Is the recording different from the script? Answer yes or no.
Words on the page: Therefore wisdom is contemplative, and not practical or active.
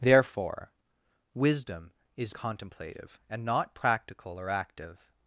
no